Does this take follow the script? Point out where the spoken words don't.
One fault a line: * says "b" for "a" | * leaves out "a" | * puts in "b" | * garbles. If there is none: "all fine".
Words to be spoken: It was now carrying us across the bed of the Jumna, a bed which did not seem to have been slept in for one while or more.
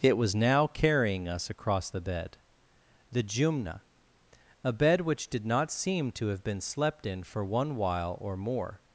* leaves out "of"